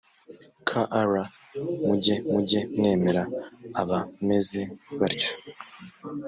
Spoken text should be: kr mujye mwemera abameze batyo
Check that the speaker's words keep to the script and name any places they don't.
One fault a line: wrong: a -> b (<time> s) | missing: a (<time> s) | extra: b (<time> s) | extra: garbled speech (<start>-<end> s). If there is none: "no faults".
extra: mujye (2.3 s)